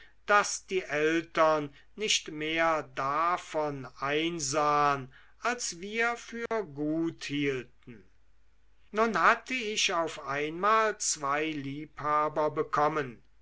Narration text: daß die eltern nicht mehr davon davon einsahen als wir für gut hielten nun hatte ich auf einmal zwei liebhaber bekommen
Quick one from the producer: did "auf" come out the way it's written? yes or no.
yes